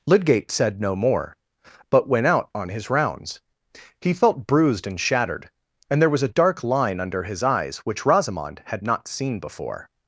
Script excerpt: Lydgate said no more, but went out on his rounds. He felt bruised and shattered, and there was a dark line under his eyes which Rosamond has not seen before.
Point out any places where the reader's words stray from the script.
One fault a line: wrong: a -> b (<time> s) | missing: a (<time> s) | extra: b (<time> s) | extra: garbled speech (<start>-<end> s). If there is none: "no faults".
wrong: has -> had (8.7 s)